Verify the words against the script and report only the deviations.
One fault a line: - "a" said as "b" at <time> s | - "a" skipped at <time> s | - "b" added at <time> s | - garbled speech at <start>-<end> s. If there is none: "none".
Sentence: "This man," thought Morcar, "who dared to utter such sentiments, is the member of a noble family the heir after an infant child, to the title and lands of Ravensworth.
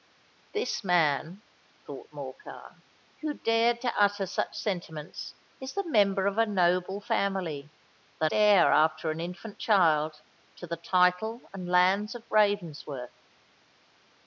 none